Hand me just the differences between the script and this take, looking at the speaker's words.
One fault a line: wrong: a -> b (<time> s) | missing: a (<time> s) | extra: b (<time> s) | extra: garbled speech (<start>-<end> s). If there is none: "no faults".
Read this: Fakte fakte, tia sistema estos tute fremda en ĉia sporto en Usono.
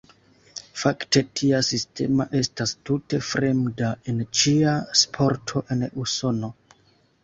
missing: fakte (1.2 s)
wrong: estos -> estas (2.4 s)